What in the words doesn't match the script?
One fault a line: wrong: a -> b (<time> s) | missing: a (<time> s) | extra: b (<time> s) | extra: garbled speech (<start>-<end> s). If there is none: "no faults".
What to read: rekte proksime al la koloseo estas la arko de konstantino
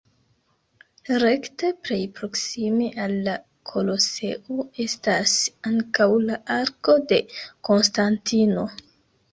extra: plej (1.9 s)
extra: ankaŭ (5.7 s)